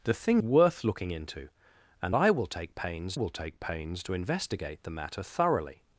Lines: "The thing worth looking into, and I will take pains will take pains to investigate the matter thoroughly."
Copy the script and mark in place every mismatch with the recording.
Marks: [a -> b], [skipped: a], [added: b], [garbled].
"The thing worth looking into, and I will take pains will take pains to investigate the matter thoroughly."